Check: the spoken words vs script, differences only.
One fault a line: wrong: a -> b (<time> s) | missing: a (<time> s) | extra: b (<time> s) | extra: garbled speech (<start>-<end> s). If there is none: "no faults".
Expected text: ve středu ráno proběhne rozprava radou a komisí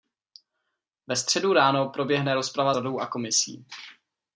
no faults